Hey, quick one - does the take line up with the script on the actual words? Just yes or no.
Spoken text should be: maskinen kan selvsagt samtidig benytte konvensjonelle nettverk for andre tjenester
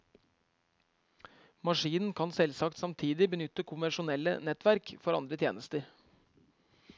yes